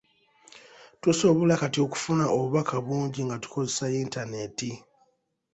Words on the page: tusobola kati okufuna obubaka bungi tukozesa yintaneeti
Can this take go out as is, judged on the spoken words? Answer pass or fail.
fail